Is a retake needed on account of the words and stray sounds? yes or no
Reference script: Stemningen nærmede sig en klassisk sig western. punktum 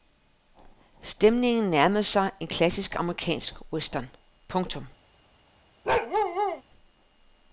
yes